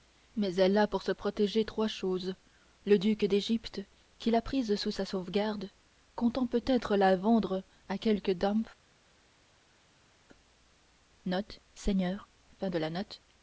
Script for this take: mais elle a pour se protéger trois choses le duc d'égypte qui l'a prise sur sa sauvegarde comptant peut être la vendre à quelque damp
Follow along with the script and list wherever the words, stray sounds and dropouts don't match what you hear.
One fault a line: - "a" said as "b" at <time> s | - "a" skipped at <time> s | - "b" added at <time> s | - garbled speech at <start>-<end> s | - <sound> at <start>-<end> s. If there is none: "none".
- "sur" said as "sous" at 4.8 s